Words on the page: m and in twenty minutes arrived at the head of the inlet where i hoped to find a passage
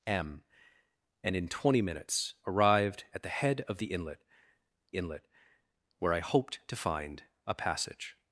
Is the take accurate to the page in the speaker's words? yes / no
no